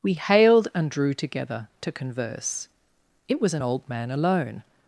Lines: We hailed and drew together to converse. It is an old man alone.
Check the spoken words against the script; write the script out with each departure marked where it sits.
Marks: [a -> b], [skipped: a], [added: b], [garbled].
We hailed and drew together to converse. It [is -> was] an old man alone.